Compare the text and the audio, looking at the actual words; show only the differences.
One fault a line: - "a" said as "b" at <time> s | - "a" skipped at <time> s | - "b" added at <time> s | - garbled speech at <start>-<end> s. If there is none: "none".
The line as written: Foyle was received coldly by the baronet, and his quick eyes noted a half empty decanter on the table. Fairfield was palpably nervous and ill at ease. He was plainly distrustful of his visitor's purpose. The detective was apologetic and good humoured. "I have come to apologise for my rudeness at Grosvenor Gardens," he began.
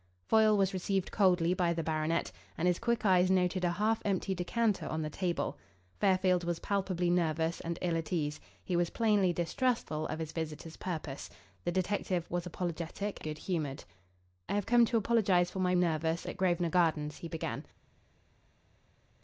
- "and" skipped at 13.2 s
- "rudeness" said as "nervous" at 15.8 s